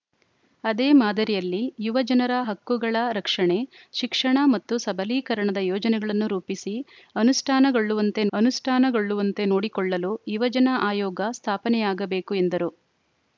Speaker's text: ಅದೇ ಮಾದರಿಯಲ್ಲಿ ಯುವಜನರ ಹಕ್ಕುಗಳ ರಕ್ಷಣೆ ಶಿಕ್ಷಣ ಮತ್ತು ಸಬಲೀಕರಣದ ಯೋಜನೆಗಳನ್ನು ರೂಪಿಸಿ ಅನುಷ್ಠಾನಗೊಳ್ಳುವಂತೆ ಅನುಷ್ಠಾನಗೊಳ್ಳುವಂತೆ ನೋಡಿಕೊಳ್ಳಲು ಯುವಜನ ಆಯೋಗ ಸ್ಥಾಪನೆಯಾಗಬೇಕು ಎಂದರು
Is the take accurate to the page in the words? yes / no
yes